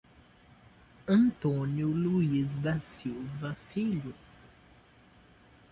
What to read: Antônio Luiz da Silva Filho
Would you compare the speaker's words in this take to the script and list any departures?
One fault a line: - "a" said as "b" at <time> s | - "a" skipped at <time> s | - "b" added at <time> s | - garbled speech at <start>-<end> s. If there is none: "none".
none